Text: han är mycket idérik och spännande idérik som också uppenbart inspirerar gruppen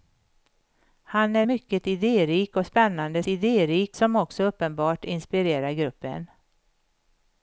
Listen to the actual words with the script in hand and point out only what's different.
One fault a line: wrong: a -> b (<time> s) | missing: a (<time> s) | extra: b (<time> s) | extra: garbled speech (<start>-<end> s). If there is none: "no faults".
no faults